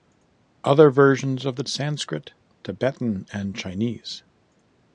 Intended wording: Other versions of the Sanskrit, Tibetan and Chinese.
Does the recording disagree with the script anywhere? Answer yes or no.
no